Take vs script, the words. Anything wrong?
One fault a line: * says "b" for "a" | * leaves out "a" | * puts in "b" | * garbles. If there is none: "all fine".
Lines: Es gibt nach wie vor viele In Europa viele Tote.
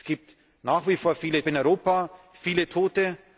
all fine